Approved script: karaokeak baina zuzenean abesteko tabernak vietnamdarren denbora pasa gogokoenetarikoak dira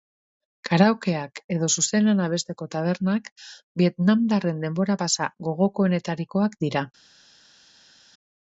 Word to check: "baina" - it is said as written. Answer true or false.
false